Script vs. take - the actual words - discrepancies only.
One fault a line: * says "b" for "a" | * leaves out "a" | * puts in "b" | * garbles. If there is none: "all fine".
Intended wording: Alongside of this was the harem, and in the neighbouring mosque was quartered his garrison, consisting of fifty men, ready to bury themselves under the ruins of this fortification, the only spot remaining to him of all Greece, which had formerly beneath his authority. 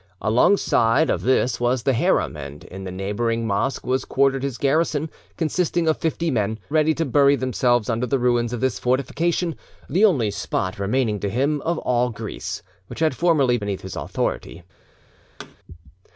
all fine